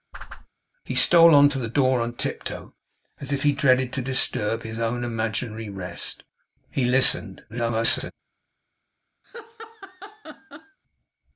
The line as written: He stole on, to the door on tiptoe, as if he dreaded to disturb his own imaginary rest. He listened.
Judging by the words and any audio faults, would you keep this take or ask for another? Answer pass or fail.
fail